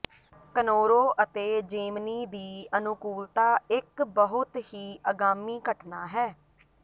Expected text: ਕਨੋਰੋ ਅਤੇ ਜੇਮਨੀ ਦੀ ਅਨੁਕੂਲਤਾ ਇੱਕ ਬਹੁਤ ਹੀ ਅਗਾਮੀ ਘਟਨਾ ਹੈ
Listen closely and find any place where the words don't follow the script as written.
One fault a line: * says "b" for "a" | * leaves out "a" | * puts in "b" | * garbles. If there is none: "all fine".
all fine